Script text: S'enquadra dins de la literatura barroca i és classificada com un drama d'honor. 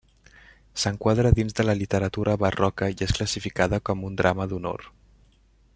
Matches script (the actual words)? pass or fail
pass